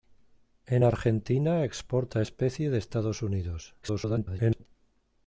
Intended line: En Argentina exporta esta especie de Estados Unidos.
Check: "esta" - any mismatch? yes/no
yes